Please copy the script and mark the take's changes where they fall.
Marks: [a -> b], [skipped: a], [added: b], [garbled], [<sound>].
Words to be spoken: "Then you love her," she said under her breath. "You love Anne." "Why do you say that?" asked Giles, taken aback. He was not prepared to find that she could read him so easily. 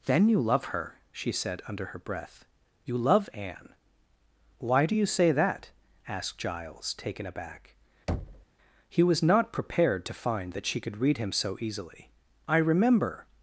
"Then you love her," she said under her breath. "You love Anne." "Why do you say that?" asked Giles, taken aback. [thud] He was not prepared to find that she could read him so easily. [added: I remember]